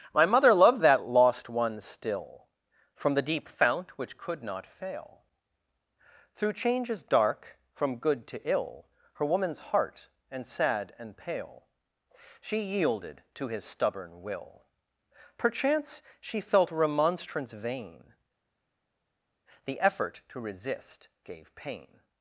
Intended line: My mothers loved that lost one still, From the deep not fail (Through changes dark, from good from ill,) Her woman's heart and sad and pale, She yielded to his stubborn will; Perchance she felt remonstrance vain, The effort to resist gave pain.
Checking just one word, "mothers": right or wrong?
wrong